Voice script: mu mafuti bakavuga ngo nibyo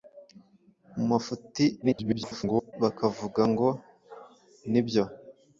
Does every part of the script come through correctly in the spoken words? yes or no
no